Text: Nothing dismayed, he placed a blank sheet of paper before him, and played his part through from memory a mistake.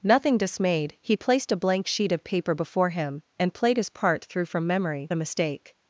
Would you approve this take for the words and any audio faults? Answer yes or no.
yes